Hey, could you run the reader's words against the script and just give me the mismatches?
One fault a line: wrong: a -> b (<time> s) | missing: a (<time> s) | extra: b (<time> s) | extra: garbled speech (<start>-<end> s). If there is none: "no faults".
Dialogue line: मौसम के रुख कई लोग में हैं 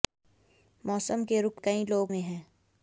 no faults